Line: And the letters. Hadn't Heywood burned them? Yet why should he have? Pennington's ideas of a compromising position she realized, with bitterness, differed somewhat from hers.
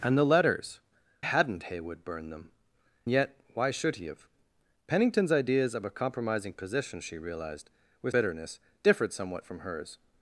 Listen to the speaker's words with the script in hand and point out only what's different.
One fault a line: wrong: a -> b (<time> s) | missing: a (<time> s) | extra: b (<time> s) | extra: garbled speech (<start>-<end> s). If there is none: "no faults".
no faults